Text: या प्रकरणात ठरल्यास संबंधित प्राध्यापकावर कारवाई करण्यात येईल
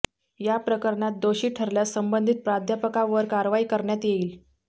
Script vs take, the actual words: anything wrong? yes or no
yes